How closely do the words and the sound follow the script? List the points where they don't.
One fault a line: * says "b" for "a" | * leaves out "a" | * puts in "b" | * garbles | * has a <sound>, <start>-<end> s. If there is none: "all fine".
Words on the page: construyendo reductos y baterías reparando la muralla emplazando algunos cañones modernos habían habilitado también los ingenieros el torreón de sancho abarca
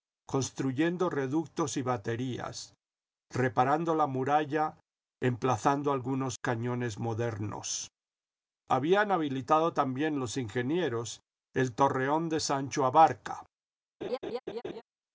* has a laugh, 14.0-14.8 s